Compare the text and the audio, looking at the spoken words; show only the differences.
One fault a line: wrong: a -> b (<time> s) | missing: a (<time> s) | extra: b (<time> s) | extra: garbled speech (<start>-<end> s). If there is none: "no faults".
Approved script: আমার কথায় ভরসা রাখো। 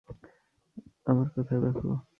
missing: ভরসা (1.6 s)